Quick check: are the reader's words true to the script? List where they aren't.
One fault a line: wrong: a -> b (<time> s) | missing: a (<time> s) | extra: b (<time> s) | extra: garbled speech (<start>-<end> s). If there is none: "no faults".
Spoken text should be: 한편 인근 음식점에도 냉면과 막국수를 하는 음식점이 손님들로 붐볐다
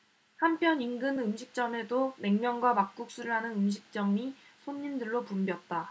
no faults